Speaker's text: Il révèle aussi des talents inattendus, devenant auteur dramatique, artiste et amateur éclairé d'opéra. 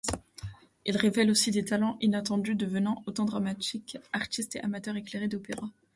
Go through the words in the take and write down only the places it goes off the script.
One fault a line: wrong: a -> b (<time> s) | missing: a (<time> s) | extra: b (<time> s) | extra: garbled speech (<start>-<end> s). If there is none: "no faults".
no faults